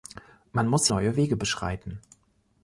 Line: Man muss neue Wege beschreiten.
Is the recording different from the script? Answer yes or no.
no